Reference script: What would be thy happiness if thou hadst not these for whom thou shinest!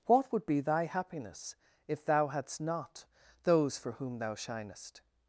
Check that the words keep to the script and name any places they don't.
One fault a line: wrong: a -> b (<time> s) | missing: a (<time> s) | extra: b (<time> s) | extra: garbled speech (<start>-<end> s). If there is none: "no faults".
wrong: these -> those (3.4 s)